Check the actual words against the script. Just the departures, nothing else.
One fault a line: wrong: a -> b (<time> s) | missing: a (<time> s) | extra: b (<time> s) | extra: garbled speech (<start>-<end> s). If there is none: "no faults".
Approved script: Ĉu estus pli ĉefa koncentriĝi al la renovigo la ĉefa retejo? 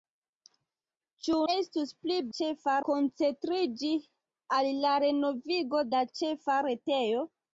no faults